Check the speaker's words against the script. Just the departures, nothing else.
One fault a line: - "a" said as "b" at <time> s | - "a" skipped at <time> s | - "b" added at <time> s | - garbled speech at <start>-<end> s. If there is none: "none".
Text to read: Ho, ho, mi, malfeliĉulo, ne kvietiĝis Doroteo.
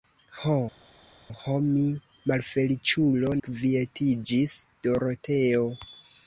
- "ne" skipped at 3.3 s